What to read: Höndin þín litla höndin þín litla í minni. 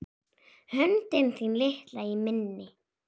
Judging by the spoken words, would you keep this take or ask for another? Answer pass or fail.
fail